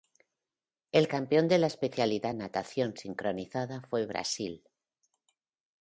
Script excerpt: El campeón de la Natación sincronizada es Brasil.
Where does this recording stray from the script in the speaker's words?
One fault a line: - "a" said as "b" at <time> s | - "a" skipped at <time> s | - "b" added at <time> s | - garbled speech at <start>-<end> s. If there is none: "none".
- "especialidad" added at 1.7 s
- "es" said as "fue" at 3.8 s